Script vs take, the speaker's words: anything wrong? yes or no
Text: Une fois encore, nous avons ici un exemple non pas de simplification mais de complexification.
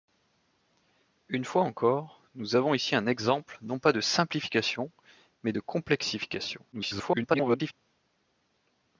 yes